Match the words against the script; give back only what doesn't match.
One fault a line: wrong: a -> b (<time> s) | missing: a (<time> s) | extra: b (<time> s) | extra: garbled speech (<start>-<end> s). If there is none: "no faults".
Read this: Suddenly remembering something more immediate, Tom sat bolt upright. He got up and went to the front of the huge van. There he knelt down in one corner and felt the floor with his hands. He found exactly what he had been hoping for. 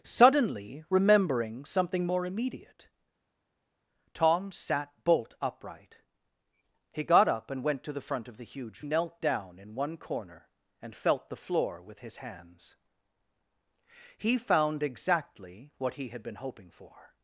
missing: van There he (8.8 s)